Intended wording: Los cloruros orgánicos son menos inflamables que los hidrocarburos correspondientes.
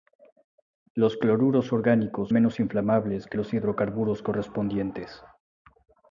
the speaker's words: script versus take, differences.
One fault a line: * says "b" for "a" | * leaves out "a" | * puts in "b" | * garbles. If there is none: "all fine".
* leaves out "son"